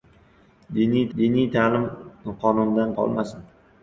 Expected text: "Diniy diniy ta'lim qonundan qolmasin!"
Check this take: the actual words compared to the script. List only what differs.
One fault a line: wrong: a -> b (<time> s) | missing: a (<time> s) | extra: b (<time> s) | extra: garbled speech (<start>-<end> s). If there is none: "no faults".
no faults